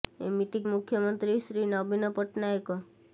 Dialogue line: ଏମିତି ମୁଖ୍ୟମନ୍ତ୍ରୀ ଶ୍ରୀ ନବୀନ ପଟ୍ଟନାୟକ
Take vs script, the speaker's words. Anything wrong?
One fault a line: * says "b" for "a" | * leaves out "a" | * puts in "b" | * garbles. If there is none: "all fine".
all fine